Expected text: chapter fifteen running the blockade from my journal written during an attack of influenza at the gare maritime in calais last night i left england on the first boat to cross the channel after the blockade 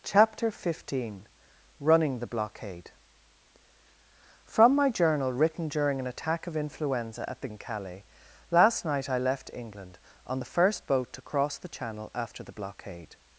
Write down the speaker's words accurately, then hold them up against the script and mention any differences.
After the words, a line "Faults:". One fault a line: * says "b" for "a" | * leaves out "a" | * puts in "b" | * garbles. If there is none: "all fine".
chapter fifteen running the blockade from my journal written during an attack of influenza at the in calais last night i left england on the first boat to cross the channel after the blockade
Faults:
* leaves out "gare maritime"